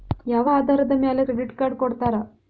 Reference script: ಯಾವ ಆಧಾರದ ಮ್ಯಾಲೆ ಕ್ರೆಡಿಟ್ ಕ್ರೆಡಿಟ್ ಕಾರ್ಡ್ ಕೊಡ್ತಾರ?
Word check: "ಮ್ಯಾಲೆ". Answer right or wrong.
right